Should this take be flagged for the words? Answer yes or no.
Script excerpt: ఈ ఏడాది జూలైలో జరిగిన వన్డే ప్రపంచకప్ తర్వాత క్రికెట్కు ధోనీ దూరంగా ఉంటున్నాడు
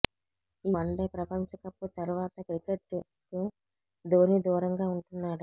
yes